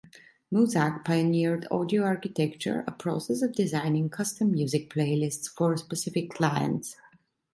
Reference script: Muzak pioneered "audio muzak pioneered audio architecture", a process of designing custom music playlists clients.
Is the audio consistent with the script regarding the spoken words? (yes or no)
no